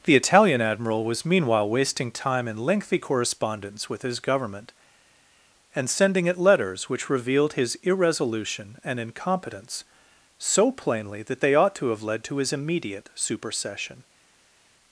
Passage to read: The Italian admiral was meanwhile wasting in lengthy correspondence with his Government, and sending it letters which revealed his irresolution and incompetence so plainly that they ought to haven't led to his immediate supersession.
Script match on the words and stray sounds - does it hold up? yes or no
no